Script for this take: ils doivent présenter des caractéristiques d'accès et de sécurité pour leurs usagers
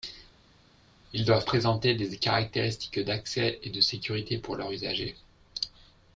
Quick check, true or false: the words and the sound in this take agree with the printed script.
true